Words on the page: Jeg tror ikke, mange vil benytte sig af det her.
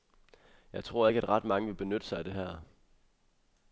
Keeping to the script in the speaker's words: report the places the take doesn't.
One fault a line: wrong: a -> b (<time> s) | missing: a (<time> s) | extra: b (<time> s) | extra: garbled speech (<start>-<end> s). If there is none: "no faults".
extra: at ret (1.2 s)